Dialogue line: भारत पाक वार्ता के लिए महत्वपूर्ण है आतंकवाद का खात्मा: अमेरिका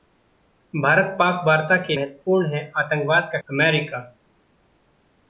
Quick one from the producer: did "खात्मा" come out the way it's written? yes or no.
no